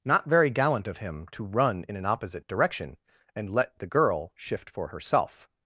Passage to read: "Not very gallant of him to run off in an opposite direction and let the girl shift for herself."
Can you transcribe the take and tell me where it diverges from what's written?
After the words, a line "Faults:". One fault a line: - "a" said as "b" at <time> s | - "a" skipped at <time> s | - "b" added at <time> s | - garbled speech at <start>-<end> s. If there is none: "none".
"Not very gallant of him to run in an opposite direction and let the girl shift for herself."
Faults:
- "off" skipped at 1.8 s